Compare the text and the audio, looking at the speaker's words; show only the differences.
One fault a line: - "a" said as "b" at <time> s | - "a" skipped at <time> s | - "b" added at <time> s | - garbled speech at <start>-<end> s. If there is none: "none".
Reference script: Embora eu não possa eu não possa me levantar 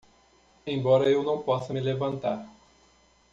- "eu não possa" skipped at 1.8 s